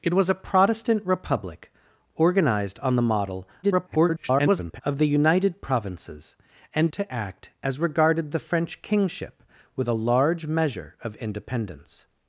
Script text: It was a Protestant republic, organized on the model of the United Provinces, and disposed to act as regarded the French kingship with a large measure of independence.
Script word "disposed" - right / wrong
wrong